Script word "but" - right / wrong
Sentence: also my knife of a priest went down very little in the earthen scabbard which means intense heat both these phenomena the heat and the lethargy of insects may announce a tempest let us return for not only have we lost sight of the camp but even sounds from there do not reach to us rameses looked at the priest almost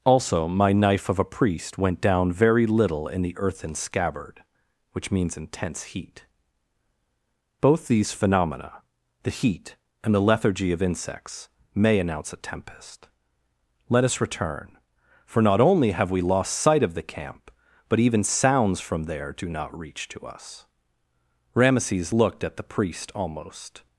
right